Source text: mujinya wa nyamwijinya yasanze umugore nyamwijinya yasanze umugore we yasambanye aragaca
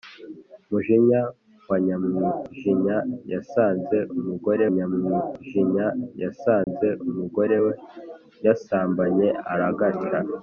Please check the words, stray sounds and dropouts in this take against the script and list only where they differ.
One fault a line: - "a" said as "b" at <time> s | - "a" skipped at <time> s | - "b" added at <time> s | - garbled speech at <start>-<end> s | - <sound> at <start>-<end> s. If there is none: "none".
- dropout at 6.6-6.7 s